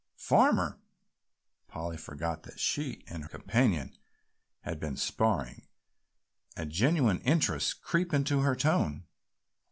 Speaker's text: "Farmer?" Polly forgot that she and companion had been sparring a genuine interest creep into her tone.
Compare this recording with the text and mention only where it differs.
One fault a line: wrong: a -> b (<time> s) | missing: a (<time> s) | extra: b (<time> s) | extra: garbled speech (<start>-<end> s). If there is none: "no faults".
no faults